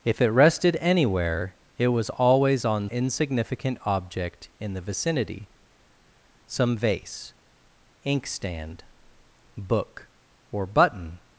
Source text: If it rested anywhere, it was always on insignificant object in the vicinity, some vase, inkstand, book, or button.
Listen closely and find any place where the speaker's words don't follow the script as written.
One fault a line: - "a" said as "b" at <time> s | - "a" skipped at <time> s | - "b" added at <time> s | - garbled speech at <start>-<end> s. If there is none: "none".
none